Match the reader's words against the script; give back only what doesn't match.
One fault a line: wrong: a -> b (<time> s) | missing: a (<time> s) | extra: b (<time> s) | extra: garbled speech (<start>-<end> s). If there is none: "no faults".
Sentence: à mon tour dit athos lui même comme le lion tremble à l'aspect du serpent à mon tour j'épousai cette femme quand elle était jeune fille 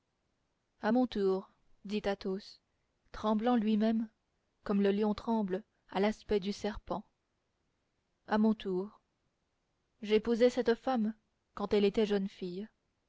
extra: tremblant (3.1 s)